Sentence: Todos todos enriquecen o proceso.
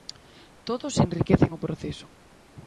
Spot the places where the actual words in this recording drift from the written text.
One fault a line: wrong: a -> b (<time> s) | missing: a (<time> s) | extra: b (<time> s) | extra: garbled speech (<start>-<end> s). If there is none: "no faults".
missing: todos (0.9 s)